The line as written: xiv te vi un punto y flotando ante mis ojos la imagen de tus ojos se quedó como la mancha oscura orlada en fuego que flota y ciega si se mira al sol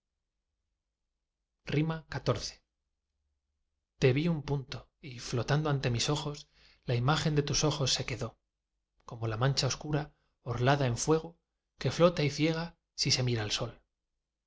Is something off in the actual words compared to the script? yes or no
no